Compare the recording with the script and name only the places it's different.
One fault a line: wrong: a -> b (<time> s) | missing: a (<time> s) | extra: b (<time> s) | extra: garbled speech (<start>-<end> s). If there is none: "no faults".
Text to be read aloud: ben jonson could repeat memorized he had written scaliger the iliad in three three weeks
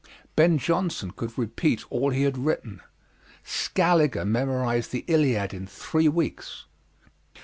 wrong: memorized -> all (1.9 s)
extra: memorized (4.2 s)
missing: three (6.1 s)